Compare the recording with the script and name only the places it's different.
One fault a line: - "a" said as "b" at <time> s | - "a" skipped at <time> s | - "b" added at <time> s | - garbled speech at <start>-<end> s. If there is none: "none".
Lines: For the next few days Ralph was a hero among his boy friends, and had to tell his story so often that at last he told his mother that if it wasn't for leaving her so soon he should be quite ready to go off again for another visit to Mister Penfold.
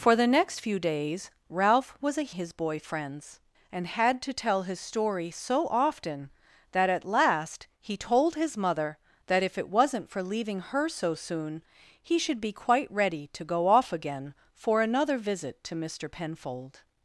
- "hero among" skipped at 2.3 s